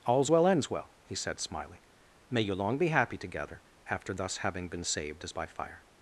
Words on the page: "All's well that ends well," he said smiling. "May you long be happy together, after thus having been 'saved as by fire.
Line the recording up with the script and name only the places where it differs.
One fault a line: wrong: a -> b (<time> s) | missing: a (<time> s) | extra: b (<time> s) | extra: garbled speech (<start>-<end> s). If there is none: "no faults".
missing: that (0.5 s)